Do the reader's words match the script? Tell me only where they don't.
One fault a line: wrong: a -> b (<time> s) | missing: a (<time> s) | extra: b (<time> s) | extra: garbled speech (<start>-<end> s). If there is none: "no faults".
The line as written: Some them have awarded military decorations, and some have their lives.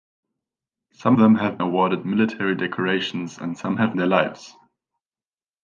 no faults